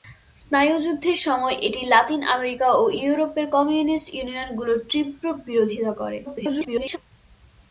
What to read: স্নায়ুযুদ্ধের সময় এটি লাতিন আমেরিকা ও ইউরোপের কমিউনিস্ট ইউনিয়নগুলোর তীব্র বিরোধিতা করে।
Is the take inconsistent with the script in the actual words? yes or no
yes